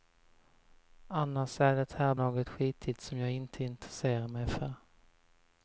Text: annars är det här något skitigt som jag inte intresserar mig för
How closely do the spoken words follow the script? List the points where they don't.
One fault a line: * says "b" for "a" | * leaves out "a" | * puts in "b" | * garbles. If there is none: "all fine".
all fine